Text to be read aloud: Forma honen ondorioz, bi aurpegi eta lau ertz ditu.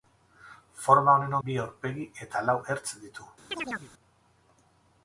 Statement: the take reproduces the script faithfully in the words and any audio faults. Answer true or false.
false